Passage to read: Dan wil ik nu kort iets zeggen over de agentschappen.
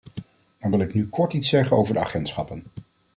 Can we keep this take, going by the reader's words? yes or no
yes